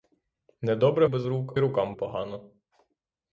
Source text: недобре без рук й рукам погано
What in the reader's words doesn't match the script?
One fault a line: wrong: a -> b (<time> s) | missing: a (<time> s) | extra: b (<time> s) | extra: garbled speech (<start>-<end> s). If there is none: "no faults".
no faults